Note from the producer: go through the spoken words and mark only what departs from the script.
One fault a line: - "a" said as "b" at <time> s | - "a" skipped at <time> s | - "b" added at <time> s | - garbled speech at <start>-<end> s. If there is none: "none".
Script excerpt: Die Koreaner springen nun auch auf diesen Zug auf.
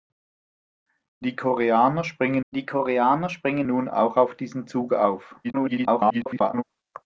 - "die Koreaner springen" added at 2.5 s
- garbled speech at 5.4-6.6 s